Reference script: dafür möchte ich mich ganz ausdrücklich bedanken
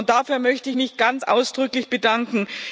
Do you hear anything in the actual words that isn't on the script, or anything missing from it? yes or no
no